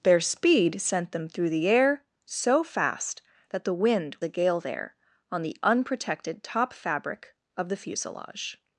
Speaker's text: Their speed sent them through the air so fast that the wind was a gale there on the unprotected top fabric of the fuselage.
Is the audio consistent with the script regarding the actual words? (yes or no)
no